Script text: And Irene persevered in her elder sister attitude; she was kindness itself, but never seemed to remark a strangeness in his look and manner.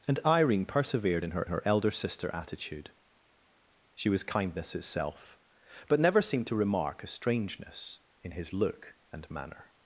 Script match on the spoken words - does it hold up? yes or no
no